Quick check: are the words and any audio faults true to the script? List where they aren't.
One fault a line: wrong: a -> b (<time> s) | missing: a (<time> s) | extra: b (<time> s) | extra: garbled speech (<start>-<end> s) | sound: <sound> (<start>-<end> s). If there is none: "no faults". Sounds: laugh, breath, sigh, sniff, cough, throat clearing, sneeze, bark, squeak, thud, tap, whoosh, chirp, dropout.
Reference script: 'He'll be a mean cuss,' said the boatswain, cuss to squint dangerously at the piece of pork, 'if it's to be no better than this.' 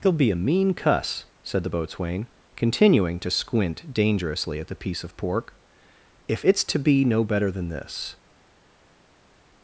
wrong: cuss -> continuing (2.5 s)